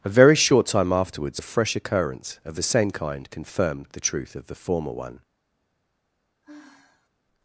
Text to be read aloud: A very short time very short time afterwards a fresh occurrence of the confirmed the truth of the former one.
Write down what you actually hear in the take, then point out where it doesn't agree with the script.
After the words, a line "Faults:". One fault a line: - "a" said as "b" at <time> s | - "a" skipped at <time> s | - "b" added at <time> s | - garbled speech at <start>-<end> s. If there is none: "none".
A very short time afterwards a fresh occurrence of the same kind confirmed the truth of the former one.
Faults:
- "very short time" skipped at 0.9 s
- "same kind" added at 2.6 s